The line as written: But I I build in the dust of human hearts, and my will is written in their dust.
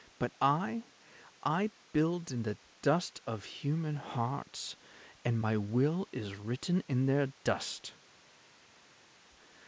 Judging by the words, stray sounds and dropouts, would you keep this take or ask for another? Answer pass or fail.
pass